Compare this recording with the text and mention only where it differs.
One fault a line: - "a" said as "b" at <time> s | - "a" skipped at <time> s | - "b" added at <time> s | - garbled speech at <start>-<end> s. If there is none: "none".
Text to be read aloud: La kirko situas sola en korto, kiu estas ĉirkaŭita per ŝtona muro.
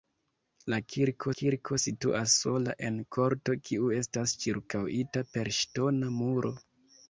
- "kirko" added at 1.4 s